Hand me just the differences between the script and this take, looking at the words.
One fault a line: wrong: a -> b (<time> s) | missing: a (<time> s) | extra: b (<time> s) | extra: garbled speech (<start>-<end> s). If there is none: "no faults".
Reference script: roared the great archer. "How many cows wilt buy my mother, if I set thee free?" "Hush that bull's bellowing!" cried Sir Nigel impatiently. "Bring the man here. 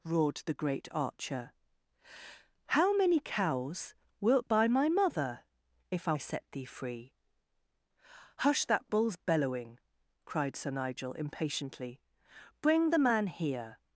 no faults